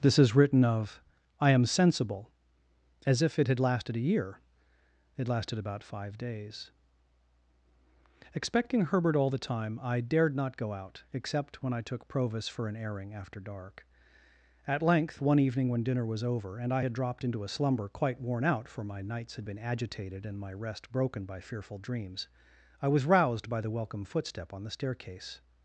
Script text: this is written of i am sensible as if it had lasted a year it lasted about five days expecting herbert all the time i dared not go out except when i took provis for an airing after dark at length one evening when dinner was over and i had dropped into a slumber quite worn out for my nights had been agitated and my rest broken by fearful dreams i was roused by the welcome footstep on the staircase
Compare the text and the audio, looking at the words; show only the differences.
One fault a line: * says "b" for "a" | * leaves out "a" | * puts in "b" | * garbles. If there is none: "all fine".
all fine